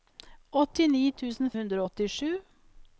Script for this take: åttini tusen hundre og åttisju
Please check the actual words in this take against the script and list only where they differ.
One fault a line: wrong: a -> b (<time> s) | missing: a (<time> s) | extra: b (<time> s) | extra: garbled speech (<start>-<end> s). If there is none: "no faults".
no faults